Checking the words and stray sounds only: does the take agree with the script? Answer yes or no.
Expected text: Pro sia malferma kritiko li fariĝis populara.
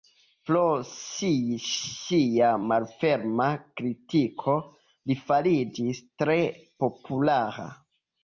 no